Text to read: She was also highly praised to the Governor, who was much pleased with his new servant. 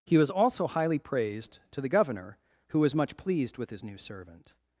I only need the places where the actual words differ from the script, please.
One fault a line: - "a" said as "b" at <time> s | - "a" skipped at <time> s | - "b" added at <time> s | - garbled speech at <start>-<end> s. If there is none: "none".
- "She" said as "He" at 0.1 s